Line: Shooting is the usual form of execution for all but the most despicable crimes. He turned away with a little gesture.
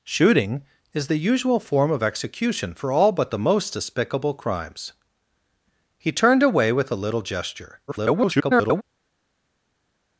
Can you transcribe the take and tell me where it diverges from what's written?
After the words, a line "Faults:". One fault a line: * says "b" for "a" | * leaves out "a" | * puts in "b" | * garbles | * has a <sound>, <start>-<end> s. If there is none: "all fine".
Shooting is the usual form of execution for all but the most despicable crimes. He turned away with a little gesture. [garbled]
Faults:
* garbles